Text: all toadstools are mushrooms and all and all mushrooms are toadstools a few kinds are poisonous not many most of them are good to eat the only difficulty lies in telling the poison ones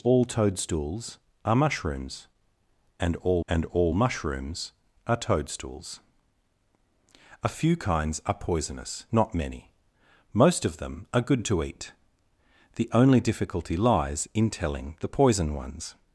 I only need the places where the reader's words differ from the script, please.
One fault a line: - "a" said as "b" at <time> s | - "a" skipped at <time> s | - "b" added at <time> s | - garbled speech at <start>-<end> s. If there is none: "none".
none